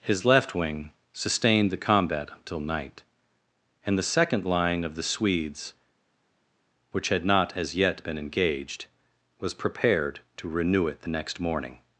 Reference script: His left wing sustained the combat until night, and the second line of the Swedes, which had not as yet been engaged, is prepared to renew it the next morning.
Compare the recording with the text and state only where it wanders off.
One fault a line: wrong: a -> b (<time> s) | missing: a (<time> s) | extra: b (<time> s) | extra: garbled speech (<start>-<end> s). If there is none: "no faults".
wrong: is -> was (9.4 s)